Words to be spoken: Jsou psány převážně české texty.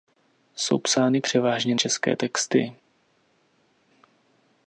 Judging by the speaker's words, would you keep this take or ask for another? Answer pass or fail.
pass